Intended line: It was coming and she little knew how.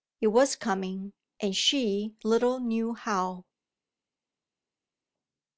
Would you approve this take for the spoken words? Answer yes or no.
yes